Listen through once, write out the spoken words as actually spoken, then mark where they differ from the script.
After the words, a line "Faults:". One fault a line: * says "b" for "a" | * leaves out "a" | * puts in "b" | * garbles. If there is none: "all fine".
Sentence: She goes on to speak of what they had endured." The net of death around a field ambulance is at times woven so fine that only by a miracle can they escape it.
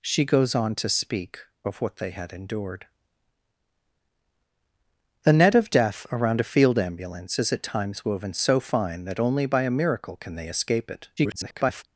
She goes on to speak of what they had endured." The net of death around a field ambulance is at times woven so fine that only by a miracle can they escape it. [garbled]
Faults:
* garbles